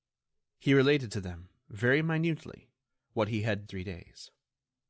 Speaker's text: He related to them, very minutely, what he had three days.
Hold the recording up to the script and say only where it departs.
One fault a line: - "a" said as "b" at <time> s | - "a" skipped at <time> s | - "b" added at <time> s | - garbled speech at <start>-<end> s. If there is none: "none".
none